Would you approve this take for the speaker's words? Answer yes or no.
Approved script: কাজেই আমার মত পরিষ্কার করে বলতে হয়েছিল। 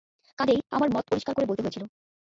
yes